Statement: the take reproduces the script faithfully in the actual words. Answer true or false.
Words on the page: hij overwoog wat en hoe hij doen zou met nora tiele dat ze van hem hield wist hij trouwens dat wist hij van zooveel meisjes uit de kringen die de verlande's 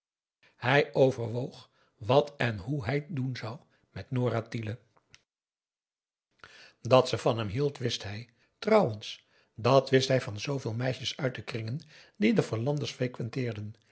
true